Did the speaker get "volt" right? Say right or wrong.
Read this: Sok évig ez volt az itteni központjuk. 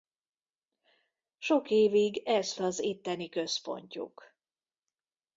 wrong